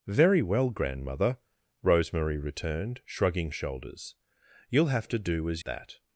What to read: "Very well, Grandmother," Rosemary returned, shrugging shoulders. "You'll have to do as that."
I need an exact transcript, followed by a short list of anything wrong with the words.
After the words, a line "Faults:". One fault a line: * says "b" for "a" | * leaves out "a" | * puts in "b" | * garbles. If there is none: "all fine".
"Very well, Grandmother," Rosemary returned, shrugging shoulders. "You'll have to do as that."
Faults:
all fine